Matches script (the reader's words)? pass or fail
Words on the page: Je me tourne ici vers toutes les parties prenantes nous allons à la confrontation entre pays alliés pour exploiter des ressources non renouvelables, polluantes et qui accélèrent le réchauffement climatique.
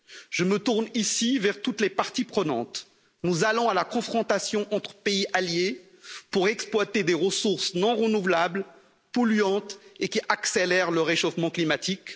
pass